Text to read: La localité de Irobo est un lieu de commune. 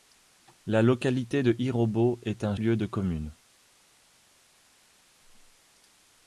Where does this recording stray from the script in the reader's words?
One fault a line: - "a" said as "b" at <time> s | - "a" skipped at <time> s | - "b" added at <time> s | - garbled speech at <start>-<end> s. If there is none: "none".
none